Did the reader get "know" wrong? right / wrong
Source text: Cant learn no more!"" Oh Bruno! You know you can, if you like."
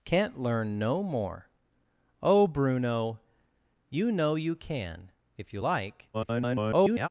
right